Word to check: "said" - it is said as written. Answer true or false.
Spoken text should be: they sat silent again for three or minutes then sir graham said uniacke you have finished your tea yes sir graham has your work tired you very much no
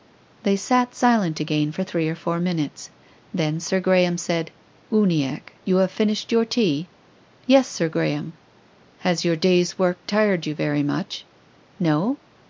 true